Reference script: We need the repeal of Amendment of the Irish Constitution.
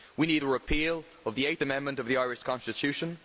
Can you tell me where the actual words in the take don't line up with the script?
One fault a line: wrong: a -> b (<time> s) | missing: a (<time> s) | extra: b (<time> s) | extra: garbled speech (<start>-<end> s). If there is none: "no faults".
extra: the Eighth (1.4 s)